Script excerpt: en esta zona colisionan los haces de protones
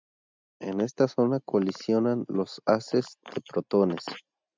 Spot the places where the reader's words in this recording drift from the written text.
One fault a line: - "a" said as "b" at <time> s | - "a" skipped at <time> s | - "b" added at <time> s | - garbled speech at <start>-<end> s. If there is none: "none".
none